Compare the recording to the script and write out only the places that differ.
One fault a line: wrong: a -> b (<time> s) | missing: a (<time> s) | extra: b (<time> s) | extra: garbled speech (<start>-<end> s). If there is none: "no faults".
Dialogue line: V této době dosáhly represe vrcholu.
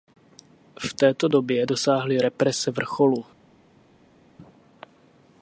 no faults